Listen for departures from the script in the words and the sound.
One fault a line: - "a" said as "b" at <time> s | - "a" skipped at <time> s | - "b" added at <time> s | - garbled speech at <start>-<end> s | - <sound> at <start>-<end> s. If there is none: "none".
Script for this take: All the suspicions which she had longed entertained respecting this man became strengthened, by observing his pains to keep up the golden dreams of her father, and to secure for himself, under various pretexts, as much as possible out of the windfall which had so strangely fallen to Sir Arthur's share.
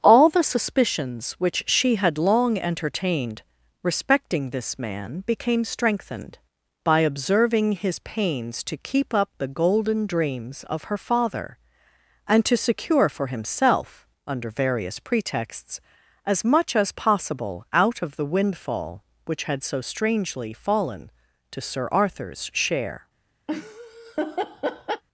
- "longed" said as "long" at 2.2 s
- laugh at 23.5-25.0 s